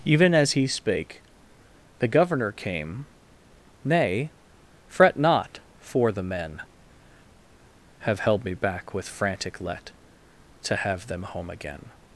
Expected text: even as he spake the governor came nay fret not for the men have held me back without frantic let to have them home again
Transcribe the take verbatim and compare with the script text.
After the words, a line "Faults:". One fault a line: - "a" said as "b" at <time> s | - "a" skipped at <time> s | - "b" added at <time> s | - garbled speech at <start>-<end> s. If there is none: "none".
even as he spake the governor came nay fret not for the men have held me back with frantic let to have them home again
Faults:
- "without" said as "with" at 8.9 s